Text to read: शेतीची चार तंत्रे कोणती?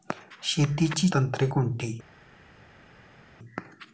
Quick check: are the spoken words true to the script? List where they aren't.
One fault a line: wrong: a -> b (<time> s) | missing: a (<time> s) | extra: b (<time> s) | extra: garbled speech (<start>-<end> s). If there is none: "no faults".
missing: चार (1.1 s)